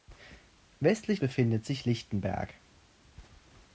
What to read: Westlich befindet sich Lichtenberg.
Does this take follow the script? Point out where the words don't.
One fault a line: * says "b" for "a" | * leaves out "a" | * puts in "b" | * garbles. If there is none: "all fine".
all fine